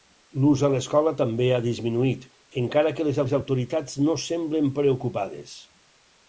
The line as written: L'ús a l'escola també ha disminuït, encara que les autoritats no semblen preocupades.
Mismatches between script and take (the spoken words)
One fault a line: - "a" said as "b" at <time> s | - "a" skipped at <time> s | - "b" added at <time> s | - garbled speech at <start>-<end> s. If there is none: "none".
- "les" added at 3.2 s